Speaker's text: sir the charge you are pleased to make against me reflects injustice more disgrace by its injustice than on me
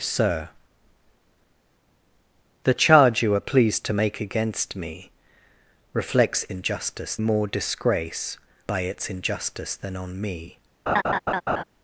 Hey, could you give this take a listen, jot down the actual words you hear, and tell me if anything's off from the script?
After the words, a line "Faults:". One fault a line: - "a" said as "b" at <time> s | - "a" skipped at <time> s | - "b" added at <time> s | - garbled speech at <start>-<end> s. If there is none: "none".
sir the charge you are pleased to make against me reflects injustice more disgrace by its injustice than on me
Faults:
none